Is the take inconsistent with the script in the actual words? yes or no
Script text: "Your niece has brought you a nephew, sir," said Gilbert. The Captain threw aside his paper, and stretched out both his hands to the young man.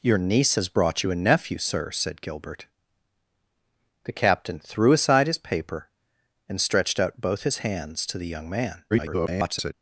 yes